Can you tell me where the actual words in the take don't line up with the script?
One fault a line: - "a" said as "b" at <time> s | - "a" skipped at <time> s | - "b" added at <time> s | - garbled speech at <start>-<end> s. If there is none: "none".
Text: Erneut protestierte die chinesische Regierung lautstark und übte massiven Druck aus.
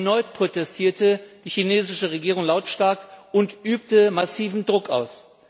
none